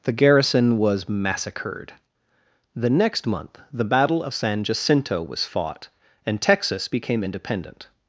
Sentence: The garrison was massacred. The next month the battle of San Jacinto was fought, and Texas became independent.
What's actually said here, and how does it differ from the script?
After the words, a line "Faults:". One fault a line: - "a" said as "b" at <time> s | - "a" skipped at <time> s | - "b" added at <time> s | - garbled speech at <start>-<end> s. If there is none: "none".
The garrison was massacred. The next month the battle of San Jacinto was fought, and Texas became independent.
Faults:
none